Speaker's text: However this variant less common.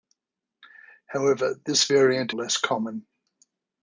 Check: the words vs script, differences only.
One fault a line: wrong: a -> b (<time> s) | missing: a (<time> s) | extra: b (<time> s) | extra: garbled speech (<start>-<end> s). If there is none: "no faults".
no faults